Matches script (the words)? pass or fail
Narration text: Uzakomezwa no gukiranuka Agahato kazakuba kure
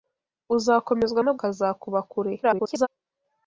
fail